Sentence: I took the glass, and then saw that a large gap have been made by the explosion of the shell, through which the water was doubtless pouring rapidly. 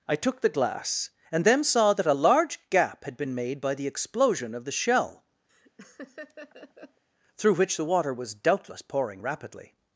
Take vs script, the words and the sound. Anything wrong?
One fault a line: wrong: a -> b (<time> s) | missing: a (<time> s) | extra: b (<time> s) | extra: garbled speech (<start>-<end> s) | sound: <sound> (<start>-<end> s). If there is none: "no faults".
wrong: have -> had (3.0 s)
sound: laugh (5.5-7.0 s)